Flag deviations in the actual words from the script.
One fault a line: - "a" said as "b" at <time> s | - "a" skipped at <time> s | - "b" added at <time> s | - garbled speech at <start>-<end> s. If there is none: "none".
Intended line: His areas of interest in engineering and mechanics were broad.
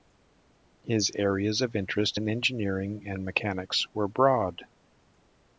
none